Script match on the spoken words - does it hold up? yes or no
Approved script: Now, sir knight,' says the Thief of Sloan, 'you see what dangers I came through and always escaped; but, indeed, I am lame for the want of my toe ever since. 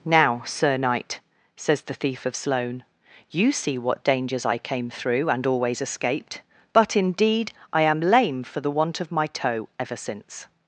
yes